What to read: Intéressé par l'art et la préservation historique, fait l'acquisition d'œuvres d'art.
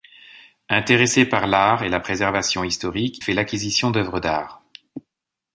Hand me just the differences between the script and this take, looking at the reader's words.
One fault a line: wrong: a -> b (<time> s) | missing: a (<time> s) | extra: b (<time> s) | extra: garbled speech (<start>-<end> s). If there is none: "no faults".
no faults